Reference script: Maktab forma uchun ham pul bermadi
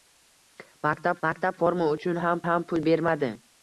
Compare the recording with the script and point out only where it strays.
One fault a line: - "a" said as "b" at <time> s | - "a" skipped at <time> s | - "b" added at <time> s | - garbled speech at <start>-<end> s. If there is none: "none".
- "maktab" added at 1.3 s
- "ham" added at 2.5 s